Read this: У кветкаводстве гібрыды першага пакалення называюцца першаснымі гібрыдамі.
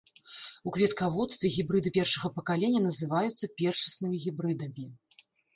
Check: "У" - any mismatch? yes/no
no